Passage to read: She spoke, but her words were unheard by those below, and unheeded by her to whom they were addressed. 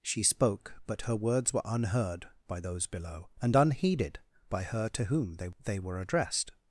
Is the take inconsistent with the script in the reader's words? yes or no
yes